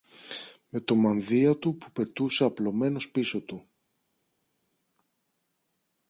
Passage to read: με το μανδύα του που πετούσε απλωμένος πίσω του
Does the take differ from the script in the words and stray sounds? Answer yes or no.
no